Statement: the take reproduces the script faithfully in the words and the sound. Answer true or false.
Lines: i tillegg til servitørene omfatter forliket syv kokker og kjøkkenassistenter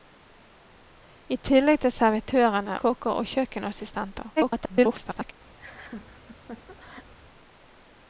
false